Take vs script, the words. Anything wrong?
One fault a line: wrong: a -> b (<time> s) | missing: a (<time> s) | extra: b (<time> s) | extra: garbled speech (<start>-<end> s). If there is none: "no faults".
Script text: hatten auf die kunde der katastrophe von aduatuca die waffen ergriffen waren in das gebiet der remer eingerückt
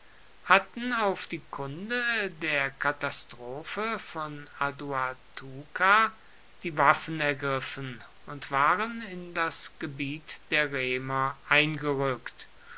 extra: und (8.2 s)